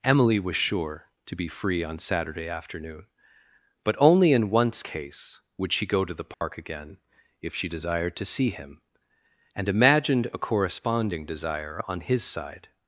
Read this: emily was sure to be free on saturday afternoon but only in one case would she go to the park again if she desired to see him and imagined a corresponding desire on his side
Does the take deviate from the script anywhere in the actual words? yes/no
yes